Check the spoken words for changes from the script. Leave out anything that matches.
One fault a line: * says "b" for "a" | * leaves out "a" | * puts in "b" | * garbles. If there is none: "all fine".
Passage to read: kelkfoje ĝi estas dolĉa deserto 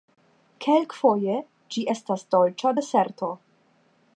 all fine